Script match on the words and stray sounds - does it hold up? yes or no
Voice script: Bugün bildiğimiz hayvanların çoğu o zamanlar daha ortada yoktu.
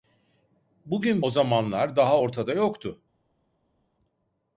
no